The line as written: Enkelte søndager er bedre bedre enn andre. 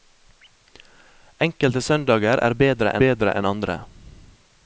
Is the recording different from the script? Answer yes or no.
no